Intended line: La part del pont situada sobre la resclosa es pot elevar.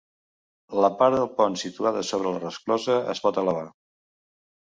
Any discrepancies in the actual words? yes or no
no